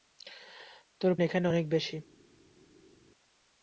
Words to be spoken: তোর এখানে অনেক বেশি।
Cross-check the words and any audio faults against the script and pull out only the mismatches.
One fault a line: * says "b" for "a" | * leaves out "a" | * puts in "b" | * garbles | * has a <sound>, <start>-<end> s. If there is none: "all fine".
all fine